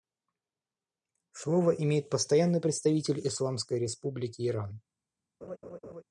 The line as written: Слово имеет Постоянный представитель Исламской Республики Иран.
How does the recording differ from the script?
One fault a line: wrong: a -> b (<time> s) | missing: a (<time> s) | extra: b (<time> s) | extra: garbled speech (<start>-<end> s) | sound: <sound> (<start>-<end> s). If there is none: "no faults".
sound: laugh (5.4-6.0 s)